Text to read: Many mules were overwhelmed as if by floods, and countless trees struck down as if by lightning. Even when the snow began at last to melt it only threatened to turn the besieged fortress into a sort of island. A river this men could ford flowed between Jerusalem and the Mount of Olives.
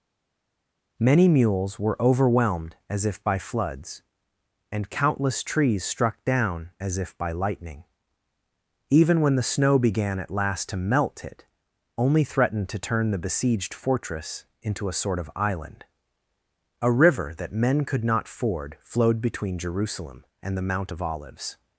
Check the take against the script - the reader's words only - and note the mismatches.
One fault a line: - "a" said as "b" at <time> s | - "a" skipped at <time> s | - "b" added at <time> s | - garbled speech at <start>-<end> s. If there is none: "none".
- "this" said as "that" at 17.4 s
- "not" added at 18.0 s